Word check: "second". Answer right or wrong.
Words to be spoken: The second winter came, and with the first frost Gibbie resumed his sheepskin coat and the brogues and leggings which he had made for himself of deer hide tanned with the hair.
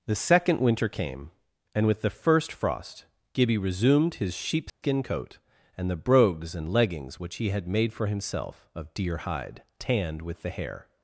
right